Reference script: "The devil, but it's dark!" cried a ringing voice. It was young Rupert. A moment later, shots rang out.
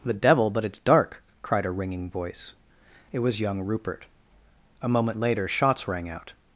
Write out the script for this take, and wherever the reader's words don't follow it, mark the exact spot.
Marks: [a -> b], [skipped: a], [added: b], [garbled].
"The devil, but it's dark!" cried a ringing voice. It was young Rupert. A moment later, shots rang out.